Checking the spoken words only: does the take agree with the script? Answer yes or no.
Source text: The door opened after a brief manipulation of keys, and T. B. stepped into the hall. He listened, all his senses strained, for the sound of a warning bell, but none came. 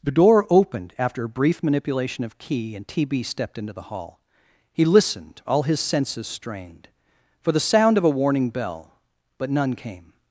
no